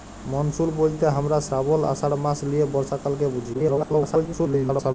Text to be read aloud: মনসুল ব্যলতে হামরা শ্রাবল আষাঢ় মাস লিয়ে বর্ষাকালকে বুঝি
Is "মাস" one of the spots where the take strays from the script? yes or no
no